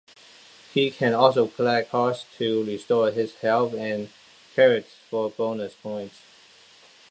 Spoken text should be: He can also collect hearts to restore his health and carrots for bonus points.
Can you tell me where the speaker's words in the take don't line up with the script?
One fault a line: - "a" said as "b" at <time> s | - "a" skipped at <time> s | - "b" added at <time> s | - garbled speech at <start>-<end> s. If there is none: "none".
none